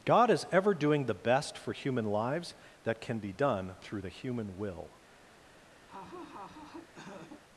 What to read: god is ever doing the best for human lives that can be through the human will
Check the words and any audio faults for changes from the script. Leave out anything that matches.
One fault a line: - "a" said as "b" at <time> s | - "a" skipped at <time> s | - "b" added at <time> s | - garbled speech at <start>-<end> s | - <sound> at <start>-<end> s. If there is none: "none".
- "done" added at 3.3 s
- laugh at 5.9-7.4 s